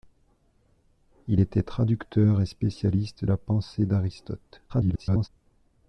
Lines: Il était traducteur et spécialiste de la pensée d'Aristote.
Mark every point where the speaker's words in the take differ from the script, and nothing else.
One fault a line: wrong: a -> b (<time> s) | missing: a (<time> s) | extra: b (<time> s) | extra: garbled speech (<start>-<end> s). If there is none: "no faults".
missing: de (3.2 s)
extra: garbled speech (4.7-5.3 s)